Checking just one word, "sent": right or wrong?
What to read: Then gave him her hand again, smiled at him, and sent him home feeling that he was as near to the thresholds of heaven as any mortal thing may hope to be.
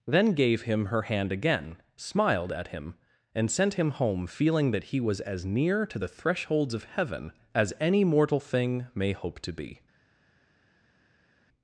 right